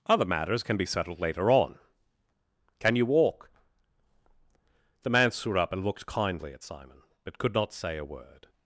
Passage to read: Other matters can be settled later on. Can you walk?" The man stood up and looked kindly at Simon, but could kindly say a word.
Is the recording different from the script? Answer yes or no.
yes